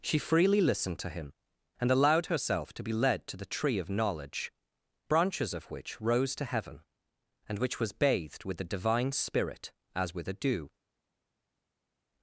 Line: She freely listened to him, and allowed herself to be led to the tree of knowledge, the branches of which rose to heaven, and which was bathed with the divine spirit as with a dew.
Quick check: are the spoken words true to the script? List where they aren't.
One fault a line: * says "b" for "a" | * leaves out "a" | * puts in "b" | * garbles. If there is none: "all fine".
* leaves out "the"